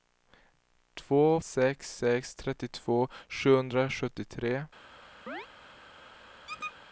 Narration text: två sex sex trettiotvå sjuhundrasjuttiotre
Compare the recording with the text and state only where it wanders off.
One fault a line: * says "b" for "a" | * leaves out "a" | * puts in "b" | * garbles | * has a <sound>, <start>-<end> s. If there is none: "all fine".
* has a chirp, 5.3-5.5 s
* has a squeak, 6.5-6.8 s